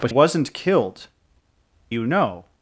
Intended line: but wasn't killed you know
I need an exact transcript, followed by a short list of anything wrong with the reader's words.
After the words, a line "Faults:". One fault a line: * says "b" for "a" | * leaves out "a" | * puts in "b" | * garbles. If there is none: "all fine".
but wasn't killed you know
Faults:
all fine